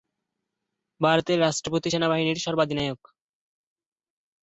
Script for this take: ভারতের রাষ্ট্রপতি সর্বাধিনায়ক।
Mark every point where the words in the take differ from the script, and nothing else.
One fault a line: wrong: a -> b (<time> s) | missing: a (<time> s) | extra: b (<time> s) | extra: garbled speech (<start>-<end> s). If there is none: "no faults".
extra: সেনাবাহিনীর (1.9 s)